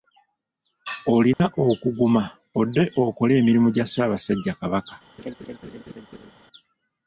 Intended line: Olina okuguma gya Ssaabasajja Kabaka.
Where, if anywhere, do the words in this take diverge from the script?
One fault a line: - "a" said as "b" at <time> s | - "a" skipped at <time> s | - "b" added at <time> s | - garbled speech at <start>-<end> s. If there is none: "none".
- "odde okole emirimu" added at 2.6 s